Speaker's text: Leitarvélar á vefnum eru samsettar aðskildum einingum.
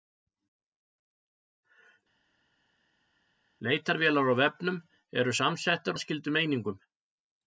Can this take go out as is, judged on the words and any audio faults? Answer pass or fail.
pass